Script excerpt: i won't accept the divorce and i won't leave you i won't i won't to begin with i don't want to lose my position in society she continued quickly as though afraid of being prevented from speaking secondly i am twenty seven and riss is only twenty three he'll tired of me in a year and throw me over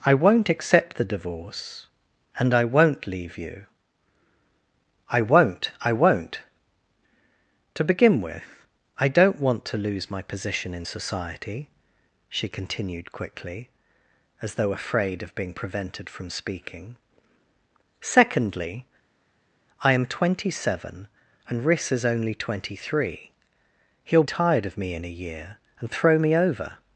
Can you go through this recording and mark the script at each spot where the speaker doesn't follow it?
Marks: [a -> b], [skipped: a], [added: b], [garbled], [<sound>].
i won't accept the divorce and i won't leave you i won't i won't to begin with i don't want to lose my position in society she continued quickly as though afraid of being prevented from speaking secondly i am twenty seven and riss is only twenty three he'll tired of me in a year and throw me over